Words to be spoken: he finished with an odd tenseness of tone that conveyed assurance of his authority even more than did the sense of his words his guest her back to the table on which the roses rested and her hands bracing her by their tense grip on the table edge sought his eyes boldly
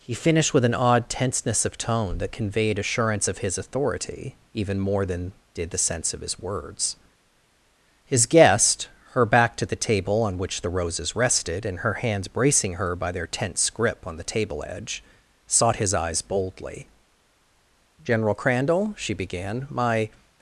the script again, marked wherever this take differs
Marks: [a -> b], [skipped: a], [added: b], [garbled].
he finished with an odd tenseness of tone that conveyed assurance of his authority even more than did the sense of his words his guest her back to the table on which the roses rested and her hands bracing her by their tense grip on the table edge sought his eyes boldly [added: general crandall she began my]